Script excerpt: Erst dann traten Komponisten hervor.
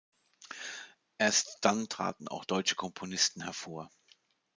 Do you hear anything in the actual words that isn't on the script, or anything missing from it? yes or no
yes